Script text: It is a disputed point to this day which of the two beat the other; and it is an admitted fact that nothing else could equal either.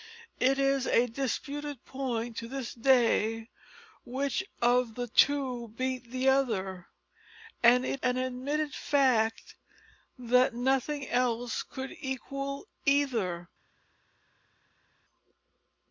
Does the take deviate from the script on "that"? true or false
false